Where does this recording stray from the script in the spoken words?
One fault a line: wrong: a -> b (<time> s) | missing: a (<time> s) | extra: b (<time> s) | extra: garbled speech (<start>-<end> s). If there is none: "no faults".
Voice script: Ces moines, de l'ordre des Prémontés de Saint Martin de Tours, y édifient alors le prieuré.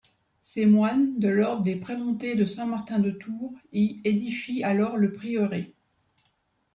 no faults